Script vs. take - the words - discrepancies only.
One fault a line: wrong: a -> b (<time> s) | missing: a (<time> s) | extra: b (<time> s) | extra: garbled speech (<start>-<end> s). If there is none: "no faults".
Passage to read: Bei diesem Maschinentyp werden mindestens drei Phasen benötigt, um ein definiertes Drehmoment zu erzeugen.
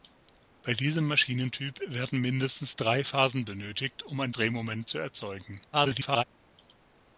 missing: definiertes (4.3 s)
extra: garbled speech (5.7-6.2 s)